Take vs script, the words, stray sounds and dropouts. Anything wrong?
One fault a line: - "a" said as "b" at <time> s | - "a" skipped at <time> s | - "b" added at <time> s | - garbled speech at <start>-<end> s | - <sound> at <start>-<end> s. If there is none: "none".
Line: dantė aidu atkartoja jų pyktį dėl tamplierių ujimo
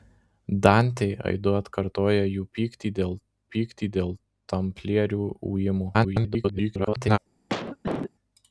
- "pyktį dėl" added at 3.5 s
- garbled speech at 5.9-7.2 s
- cough at 7.5-8.1 s